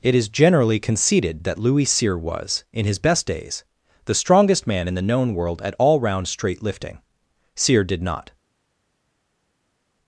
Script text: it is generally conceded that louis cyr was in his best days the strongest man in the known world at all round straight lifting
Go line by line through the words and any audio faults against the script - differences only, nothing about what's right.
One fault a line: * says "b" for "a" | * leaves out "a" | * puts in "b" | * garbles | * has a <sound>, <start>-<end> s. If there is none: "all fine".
* puts in "cyr did not"